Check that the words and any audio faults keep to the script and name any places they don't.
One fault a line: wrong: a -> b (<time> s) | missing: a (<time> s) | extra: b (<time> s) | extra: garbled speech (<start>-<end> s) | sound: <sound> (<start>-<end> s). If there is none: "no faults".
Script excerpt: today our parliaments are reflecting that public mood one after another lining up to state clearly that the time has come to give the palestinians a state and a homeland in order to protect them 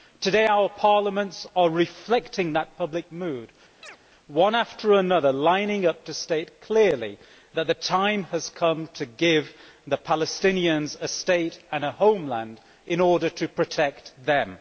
sound: chirp (3.8-4.0 s)